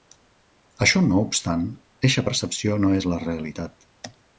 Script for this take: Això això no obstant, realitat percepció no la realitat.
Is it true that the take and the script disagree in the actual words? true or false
true